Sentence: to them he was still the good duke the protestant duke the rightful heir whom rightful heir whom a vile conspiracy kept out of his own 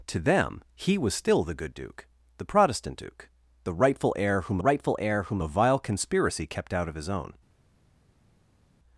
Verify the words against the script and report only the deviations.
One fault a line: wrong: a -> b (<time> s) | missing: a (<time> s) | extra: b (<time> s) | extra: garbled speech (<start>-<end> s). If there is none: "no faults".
no faults